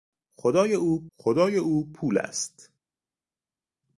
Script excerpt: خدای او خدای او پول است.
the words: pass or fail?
pass